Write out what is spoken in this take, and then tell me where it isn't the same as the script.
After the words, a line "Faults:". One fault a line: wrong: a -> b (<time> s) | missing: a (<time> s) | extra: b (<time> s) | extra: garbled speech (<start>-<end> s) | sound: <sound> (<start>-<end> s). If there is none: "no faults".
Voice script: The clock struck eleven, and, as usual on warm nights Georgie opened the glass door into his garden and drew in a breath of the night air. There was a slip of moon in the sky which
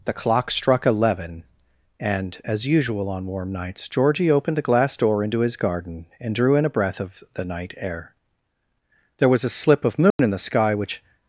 The clock struck eleven, and, as usual on warm nights Georgie opened the glass door into his garden and drew in a breath of the night air. There was a slip of moon in the sky which
Faults:
sound: dropout (10.1-10.2 s)